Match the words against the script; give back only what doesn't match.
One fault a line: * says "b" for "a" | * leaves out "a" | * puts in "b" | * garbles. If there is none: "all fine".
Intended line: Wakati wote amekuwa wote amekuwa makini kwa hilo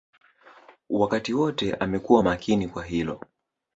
* leaves out "wote amekuwa"